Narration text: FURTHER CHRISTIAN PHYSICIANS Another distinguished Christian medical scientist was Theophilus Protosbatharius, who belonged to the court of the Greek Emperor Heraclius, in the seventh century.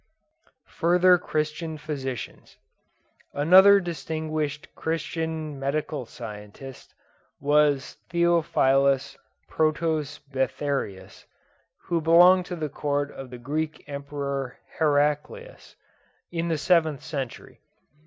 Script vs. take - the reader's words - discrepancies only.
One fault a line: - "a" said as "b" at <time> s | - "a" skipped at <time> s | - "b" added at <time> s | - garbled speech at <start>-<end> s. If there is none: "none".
none